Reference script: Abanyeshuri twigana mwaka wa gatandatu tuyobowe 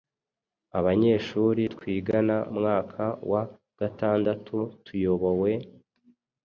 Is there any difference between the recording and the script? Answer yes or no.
no